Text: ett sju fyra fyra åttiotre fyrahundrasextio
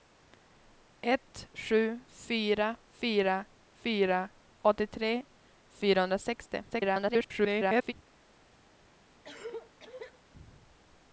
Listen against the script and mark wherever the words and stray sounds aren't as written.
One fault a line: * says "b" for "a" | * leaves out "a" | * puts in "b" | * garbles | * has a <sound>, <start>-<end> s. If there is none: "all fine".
* puts in "fyra"
* garbles
* has a cough, 9.2-10.2 s